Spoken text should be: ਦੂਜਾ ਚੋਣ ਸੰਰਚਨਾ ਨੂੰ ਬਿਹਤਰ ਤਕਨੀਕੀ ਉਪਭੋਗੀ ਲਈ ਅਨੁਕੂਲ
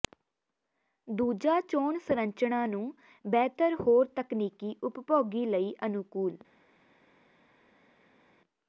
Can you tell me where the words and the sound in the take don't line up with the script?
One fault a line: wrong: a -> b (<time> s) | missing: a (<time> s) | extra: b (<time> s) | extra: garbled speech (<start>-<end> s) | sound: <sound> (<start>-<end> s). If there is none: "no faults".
extra: ਹੋਰ (3.8 s)